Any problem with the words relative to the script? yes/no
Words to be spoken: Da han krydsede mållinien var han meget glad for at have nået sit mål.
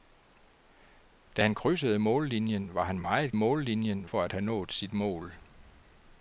yes